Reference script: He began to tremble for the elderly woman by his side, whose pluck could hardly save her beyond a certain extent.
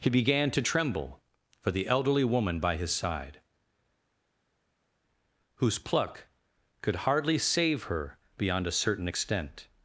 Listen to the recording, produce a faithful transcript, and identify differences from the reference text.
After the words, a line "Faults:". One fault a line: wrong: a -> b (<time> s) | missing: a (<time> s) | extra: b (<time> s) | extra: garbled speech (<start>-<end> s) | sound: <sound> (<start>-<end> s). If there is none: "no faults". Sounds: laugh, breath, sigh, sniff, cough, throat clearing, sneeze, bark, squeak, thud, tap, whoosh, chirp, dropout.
He began to tremble for the elderly woman by his side, whose pluck could hardly save her beyond a certain extent.
Faults:
no faults